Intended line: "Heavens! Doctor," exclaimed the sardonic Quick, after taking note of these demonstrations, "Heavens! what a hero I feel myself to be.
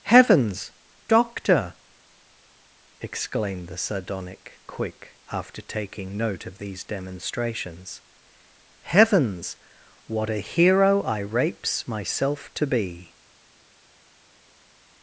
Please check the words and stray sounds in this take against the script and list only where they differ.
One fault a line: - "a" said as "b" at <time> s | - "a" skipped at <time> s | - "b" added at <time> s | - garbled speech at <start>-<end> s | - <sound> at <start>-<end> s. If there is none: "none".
- "feel" said as "rapes" at 11.2 s